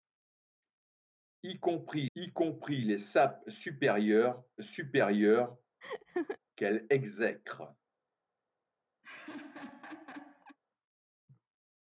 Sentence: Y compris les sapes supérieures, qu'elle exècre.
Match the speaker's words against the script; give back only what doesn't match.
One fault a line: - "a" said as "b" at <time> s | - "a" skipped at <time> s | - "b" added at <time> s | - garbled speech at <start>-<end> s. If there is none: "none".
- "y compris" added at 2.2 s
- "supérieures" added at 4.6 s